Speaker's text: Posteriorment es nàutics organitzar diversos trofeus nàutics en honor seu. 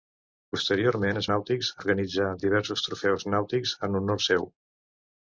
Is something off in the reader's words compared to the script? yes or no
no